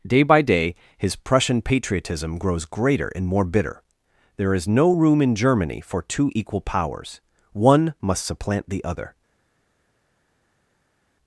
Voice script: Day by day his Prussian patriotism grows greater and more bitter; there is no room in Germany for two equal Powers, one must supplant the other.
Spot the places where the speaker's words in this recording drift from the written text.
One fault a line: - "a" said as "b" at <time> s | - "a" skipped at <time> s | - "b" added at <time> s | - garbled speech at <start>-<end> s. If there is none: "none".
none